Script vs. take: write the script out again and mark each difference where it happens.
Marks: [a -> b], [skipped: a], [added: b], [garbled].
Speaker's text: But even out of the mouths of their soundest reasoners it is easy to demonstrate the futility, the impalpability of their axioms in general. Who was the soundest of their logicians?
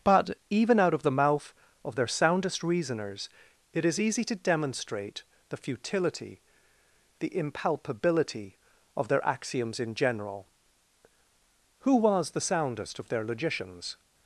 But even out of the [mouths -> mouth] of their soundest reasoners it is easy to demonstrate the futility, the impalpability of their axioms in general. Who was the soundest of their logicians?